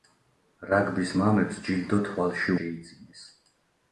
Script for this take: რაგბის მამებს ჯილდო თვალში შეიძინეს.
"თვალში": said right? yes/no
yes